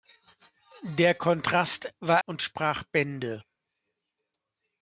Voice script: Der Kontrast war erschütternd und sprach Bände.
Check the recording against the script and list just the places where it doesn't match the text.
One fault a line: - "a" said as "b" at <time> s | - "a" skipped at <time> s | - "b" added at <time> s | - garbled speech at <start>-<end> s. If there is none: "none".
- "erschütternd" skipped at 2.2 s